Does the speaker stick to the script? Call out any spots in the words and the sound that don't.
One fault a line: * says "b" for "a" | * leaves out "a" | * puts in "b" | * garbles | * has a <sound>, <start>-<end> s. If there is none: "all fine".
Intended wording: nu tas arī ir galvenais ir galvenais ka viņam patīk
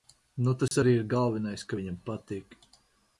* has a dropout, 0.7-0.7 s
* leaves out "ir galvenais"